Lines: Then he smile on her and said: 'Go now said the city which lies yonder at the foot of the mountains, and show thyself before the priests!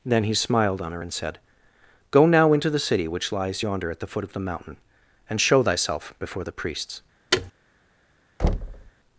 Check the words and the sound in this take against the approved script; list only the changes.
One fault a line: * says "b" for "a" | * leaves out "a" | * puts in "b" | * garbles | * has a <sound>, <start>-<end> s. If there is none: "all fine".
* says "smiled" for "smile"
* says "into" for "said"
* says "mountain" for "mountains"
* has a thud, 7.3-7.5 s
* has a thud, 8.4-8.9 s